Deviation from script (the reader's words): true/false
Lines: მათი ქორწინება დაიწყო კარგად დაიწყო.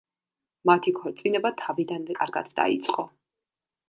true